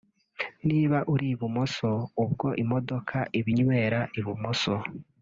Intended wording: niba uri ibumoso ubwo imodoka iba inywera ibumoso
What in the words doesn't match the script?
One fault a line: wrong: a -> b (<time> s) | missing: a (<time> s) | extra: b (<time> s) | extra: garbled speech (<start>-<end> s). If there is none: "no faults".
no faults